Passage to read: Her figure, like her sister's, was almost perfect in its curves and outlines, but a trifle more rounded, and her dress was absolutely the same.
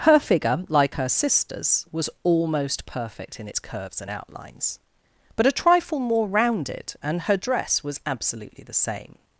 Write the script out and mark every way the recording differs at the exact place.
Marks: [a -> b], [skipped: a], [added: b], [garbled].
Her figure, like her sister's, was almost perfect in its curves and outlines, but a trifle more rounded, and her dress was absolutely the same.